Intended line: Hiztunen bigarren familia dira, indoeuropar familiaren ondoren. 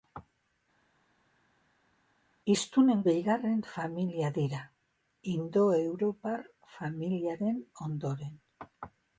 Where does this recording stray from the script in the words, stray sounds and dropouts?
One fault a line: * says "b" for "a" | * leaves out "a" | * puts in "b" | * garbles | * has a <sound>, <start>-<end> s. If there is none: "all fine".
all fine